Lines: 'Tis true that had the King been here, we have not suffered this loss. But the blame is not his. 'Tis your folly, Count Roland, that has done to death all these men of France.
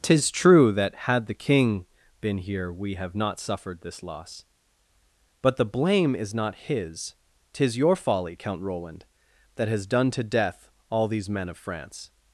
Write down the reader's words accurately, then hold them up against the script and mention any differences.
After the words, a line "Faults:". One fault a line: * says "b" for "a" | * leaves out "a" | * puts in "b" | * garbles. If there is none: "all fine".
'Tis true that had the King been here, we have not suffered this loss. But the blame is not his. 'Tis your folly, Count Roland, that has done to death all these men of France.
Faults:
all fine